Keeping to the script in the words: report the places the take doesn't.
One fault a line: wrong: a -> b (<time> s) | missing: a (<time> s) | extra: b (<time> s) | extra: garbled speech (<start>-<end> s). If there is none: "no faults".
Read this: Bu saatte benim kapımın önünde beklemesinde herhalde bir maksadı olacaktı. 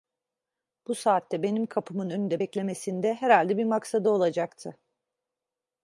no faults